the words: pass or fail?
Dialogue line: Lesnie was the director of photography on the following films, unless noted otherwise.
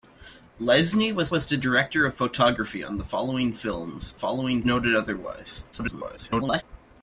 fail